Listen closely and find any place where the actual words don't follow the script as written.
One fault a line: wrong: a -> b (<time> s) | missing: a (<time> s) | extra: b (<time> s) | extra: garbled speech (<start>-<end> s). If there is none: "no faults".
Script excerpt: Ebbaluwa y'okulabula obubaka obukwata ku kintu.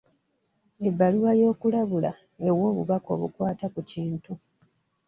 extra: ewa (2.5 s)